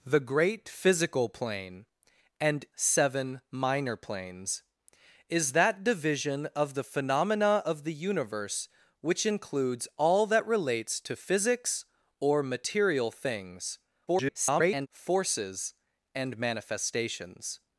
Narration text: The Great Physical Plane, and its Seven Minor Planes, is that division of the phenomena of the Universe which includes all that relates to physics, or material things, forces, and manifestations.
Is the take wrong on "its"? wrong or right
wrong